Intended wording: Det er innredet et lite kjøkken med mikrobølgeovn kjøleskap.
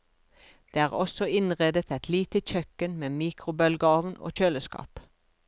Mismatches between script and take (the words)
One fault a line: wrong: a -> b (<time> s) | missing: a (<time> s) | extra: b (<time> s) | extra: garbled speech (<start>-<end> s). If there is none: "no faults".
extra: også (1.0 s)
extra: og (4.2 s)